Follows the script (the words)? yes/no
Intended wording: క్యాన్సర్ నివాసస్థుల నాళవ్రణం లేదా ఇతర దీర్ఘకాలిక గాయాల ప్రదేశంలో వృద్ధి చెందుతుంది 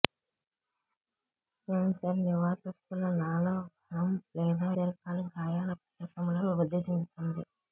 no